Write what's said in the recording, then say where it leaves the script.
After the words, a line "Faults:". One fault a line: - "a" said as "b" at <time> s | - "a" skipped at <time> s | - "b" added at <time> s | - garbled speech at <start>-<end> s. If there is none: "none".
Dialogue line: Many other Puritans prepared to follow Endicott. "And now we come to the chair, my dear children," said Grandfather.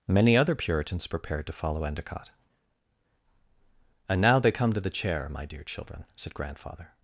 Many other Puritans prepared to follow Endicott. "And now they come to the chair, my dear children," said Grandfather.
Faults:
- "we" said as "they" at 4.4 s